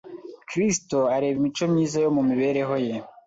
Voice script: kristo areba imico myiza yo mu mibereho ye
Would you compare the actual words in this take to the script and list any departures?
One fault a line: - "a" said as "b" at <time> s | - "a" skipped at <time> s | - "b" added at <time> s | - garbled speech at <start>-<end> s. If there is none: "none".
none